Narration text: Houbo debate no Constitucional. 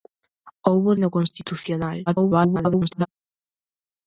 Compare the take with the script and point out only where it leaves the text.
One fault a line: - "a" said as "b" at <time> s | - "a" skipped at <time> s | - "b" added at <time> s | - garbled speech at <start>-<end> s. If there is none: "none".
- "debate" skipped at 0.9 s
- garbled speech at 2.1-3.1 s